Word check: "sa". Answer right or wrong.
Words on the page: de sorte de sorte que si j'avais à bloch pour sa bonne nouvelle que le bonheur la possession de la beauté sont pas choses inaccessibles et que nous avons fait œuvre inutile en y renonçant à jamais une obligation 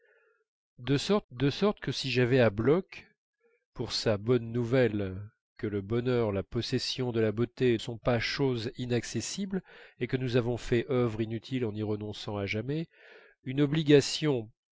right